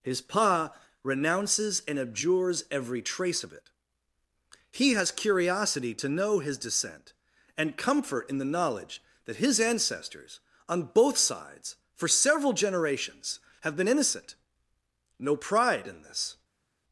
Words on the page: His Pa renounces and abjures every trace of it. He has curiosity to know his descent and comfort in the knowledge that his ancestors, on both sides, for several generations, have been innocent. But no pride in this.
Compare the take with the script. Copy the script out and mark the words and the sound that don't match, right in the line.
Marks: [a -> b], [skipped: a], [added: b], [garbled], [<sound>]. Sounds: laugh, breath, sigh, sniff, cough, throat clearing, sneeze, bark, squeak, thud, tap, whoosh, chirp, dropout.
His Pa renounces and abjures every trace of it. He has curiosity to know his descent and comfort in the knowledge that his ancestors, on both sides, for several generations, have been innocent. [skipped: But] no pride in this.